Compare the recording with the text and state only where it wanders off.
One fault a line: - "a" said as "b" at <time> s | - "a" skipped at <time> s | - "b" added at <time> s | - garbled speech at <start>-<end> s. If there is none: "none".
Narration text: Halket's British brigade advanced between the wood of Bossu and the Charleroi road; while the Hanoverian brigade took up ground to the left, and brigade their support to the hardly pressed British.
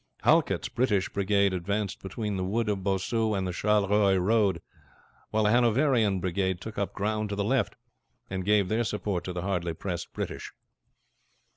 - "brigade" said as "gave" at 8.4 s